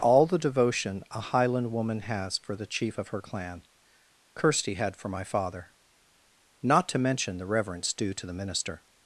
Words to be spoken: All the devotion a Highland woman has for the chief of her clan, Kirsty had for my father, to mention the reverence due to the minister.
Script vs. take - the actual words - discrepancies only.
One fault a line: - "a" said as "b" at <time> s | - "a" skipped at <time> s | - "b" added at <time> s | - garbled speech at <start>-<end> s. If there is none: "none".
- "not" added at 6.6 s